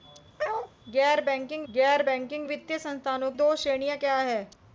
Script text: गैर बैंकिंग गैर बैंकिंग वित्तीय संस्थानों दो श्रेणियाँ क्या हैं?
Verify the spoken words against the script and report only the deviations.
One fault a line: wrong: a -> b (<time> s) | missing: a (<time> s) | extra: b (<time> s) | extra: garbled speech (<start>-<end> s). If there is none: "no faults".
no faults